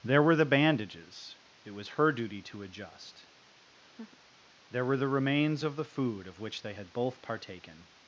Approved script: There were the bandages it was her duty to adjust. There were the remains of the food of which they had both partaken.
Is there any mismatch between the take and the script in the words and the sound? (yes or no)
yes